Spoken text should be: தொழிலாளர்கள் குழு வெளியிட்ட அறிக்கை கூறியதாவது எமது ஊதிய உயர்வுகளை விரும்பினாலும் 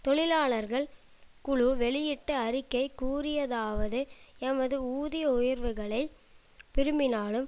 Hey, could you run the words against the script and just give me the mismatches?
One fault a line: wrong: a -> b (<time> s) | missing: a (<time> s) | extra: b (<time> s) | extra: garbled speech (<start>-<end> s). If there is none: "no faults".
no faults